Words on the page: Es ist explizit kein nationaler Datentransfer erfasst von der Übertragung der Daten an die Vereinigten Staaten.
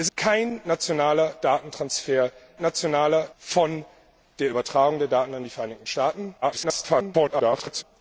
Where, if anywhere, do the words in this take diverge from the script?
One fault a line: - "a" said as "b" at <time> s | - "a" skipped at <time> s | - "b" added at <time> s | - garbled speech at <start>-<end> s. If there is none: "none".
- "ist explizit" skipped at 0.1 s
- "erfasst" said as "nationaler" at 2.6 s
- garbled speech at 6.4-7.8 s